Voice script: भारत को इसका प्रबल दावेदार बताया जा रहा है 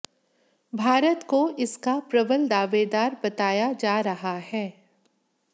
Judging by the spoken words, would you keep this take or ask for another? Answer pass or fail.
pass